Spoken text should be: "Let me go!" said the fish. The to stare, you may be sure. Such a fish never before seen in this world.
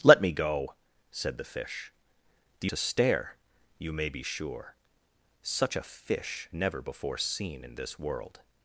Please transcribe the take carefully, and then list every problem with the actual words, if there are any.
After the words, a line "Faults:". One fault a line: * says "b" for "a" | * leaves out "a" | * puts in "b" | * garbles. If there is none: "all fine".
"Let me go!" said the fish. The to stare, you may be sure. Such a fish never before seen in this world.
Faults:
all fine